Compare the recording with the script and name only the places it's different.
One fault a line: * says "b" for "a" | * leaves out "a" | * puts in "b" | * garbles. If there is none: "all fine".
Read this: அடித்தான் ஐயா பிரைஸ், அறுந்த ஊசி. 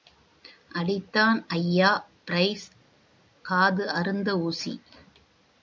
* puts in "காது"